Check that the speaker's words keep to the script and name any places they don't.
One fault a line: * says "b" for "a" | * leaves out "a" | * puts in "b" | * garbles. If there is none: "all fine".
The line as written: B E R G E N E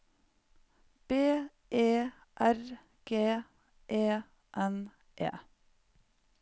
all fine